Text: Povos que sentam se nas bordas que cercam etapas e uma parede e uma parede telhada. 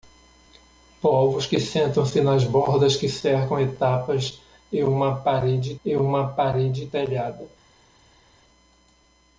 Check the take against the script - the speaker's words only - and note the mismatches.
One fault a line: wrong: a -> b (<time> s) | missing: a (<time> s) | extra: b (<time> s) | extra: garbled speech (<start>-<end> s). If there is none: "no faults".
no faults